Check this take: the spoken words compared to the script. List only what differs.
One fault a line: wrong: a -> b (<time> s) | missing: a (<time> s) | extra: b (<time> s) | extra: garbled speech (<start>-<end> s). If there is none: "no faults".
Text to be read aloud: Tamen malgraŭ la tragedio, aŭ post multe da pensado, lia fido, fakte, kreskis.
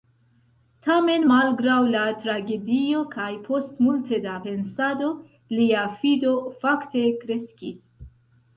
wrong: aŭ -> kaj (3.2 s)